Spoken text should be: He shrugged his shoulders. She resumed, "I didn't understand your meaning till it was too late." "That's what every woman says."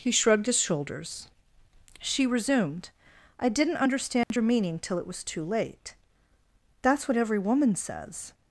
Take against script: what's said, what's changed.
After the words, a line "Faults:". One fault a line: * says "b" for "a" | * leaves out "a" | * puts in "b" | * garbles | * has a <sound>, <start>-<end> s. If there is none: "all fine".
He shrugged his shoulders. She resumed, "I didn't understand your meaning till it was too late." "That's what every woman says."
Faults:
* has a dropout, 4.2-4.3 s